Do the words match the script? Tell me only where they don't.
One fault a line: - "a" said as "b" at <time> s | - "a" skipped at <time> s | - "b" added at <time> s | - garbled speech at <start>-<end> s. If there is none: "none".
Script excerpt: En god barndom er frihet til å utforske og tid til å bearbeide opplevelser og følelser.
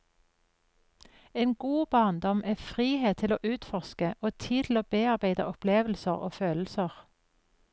none